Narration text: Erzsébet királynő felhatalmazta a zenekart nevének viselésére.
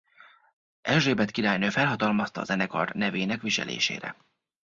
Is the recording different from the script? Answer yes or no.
no